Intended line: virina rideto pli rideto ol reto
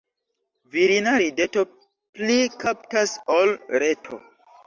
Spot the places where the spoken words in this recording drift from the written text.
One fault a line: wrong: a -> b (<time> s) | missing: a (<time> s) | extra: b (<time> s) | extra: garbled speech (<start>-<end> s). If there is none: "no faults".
wrong: rideto -> kaptas (2.6 s)